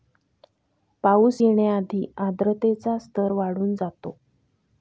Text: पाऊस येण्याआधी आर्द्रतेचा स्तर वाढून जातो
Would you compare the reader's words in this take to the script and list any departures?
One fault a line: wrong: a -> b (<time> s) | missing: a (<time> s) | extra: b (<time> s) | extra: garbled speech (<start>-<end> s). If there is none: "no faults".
no faults